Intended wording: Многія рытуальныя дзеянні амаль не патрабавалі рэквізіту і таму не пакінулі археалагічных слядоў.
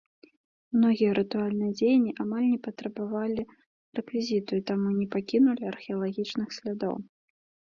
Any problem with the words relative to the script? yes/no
no